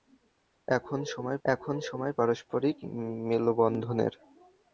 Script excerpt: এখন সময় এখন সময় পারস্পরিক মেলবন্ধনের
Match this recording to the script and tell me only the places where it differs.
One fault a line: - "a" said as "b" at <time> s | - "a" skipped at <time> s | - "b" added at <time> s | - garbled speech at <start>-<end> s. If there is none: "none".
none